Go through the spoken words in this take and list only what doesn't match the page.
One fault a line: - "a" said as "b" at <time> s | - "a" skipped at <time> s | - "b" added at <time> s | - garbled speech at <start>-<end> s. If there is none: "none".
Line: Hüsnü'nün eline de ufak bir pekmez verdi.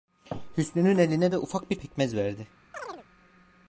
none